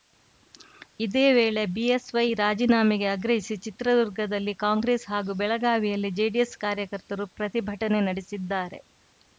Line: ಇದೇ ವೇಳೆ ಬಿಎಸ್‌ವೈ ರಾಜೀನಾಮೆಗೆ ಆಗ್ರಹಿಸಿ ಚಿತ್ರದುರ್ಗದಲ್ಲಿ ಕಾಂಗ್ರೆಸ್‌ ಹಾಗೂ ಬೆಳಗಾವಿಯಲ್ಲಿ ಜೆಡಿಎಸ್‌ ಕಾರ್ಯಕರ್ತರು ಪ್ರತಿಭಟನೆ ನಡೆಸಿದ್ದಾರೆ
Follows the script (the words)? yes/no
yes